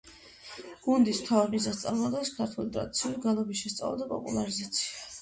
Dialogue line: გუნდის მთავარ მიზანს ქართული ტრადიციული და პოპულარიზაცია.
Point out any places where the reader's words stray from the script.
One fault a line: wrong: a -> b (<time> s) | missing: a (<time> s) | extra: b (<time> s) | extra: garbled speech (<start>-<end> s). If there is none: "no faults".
extra: წარმოადგენს (1.8 s)
extra: გალობის შესწავლა (3.3 s)